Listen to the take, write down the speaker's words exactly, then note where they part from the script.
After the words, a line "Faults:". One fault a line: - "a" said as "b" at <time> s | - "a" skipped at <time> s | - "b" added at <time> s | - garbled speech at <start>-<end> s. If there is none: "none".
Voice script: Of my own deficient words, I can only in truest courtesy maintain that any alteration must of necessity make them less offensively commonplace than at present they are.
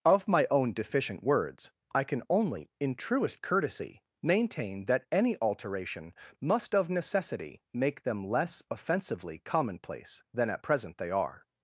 Of my own deficient words, I can only in truest courtesy maintain that any alteration must of necessity make them less offensively commonplace than at present they are.
Faults:
none